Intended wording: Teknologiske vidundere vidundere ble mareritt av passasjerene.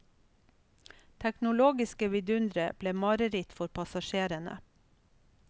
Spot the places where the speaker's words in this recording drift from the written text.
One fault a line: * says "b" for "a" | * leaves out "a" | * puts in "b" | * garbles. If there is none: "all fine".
* leaves out "vidundere"
* says "for" for "av"